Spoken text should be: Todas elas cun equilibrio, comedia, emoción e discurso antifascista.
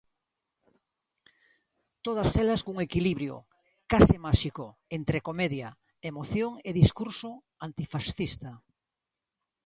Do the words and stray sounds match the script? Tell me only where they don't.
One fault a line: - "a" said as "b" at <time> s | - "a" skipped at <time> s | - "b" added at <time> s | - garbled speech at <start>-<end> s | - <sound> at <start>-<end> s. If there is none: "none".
- "case máxico entre" added at 3.9 s